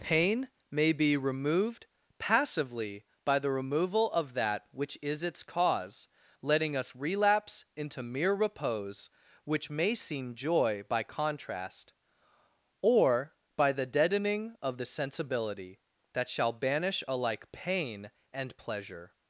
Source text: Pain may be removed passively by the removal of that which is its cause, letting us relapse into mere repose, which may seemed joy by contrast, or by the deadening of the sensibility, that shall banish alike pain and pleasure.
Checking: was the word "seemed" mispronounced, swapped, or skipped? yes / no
yes